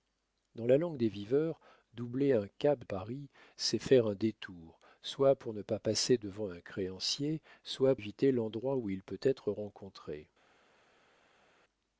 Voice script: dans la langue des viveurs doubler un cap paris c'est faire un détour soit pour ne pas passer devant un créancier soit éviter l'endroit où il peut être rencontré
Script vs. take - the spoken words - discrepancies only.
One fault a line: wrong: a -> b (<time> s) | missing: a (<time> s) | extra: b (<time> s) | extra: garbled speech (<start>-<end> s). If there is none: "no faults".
no faults